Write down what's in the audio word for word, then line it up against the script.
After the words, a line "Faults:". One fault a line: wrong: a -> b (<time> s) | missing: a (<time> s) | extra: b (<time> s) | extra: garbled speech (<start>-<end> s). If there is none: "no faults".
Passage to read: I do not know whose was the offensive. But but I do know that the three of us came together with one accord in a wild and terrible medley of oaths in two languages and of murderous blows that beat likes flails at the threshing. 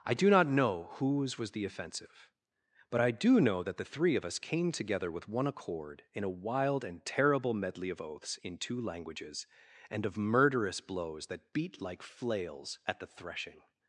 I do not know whose was the offensive. But I do know that the three of us came together with one accord in a wild and terrible medley of oaths in two languages and of murderous blows that beat like flails at the threshing.
Faults:
missing: but (3.0 s)
wrong: likes -> like (11.8 s)